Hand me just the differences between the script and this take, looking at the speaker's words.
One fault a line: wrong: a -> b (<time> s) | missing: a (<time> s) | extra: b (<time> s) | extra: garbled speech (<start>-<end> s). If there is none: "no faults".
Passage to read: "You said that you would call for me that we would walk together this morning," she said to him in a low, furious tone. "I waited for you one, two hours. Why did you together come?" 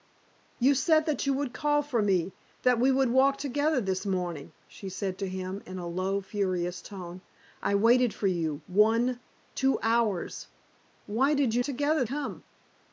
no faults